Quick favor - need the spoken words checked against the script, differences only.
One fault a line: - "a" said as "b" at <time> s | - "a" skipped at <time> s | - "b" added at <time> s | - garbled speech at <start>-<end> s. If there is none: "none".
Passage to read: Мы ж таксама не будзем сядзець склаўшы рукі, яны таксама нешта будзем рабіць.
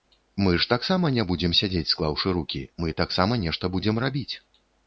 - "яны" said as "мы" at 2.8 s